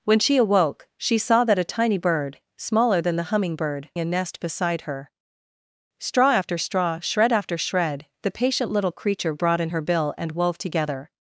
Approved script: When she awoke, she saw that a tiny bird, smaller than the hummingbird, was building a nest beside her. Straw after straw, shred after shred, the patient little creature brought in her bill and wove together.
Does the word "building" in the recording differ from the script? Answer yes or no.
yes